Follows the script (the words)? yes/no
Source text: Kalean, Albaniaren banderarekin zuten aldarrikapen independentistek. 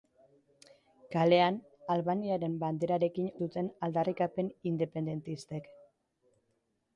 yes